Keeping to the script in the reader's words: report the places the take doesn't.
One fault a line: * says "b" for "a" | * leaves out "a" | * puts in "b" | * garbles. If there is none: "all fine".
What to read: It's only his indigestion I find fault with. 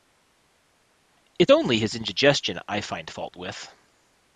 all fine